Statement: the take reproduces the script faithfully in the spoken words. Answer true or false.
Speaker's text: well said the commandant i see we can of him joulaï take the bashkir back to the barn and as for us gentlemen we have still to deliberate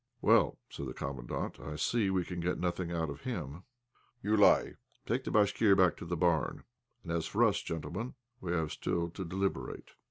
false